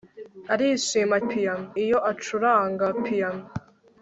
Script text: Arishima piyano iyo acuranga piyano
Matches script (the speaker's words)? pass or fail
pass